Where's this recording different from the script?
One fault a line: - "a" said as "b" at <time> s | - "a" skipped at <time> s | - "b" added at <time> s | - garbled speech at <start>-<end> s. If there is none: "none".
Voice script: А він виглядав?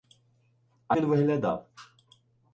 none